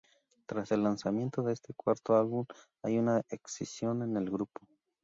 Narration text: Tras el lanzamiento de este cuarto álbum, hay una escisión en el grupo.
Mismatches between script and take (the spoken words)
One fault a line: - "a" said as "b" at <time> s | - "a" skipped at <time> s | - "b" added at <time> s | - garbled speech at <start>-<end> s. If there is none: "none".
none